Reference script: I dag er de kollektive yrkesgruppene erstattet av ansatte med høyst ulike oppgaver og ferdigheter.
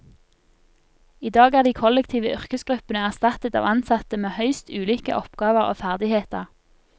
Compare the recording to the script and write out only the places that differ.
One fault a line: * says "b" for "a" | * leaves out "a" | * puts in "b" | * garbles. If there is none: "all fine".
all fine